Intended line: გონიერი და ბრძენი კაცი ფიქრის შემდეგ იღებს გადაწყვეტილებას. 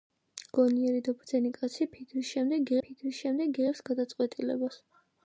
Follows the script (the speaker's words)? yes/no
no